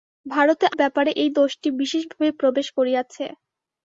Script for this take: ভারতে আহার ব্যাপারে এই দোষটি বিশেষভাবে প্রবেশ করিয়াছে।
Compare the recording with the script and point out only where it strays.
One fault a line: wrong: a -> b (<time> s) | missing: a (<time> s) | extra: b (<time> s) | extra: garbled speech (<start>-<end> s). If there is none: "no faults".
missing: আহার (0.7 s)